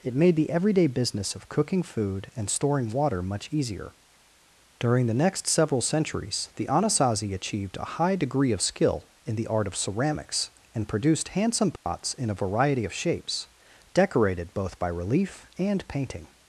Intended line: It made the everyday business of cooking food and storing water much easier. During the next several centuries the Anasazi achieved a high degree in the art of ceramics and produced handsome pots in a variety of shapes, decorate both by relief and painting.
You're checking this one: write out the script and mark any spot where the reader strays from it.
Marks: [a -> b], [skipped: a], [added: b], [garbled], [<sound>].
It made the everyday business of cooking food and storing water much easier. During the next several centuries the Anasazi achieved a high degree [added: of skill] in the art of ceramics and produced handsome pots [dropout] in a variety of shapes, [decorate -> decorated] both by relief and painting.